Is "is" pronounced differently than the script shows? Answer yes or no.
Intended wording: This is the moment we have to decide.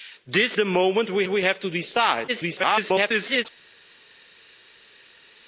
yes